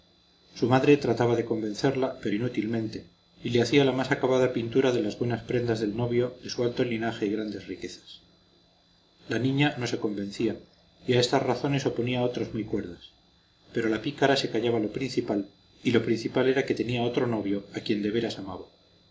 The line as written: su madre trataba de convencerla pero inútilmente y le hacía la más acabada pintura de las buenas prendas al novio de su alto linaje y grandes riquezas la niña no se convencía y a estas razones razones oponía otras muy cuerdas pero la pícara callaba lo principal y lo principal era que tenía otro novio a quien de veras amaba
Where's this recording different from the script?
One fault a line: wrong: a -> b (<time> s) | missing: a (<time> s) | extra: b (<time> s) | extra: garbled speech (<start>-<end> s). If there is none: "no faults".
wrong: al -> del (5.8 s)
missing: razones (11.8 s)
extra: se (14.4 s)